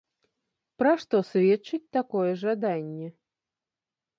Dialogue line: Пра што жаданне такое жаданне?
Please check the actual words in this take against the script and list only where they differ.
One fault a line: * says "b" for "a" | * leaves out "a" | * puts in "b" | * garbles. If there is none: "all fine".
* says "сведчыць" for "жаданне"